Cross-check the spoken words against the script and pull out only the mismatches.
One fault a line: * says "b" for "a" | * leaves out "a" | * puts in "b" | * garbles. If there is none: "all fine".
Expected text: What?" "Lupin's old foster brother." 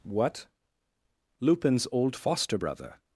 all fine